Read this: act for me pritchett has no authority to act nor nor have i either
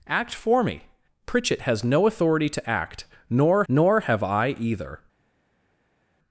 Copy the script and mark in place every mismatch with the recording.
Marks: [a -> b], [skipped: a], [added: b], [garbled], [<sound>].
act for me pritchett has no authority to act nor nor have i either